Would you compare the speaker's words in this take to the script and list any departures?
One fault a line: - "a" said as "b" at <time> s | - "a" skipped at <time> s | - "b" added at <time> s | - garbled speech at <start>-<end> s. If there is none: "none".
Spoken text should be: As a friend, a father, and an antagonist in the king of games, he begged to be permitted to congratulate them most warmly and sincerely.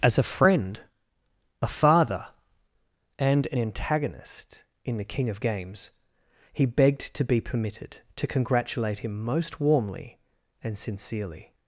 - "them" said as "him" at 9.0 s